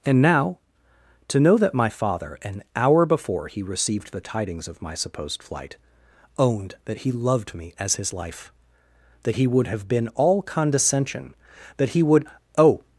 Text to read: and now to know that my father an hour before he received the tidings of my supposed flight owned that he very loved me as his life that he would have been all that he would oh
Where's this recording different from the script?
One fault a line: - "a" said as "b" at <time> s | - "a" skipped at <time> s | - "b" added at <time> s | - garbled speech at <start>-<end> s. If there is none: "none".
- "very" skipped at 7.1 s
- "condescension" added at 10.4 s